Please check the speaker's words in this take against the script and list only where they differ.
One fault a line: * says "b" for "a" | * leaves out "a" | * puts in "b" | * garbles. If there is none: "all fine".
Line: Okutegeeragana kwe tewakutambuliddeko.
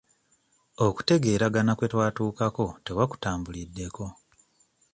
* puts in "twatuukako"